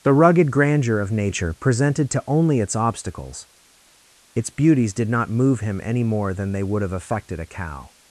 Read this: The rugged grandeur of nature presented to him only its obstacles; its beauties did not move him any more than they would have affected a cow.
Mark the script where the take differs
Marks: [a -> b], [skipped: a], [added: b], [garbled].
The rugged grandeur of nature presented to [skipped: him] only its obstacles; its beauties did not move him any more than they would have affected a cow.